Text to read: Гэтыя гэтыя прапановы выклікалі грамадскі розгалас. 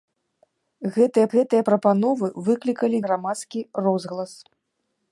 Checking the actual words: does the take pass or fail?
pass